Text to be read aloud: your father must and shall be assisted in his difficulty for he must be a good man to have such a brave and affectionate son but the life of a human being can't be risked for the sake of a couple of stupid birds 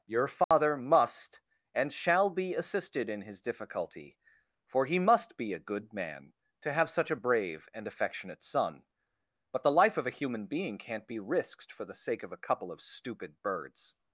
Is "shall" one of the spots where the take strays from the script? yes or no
no